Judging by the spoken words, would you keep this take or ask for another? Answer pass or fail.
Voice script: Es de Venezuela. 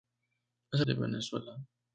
pass